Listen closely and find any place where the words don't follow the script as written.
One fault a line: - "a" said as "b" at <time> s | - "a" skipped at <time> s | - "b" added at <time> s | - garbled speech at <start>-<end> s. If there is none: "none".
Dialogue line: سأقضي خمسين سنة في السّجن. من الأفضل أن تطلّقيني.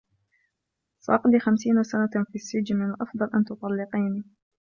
none